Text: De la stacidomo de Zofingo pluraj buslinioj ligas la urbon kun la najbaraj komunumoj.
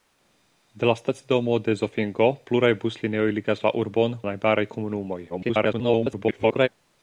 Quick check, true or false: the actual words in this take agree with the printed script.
false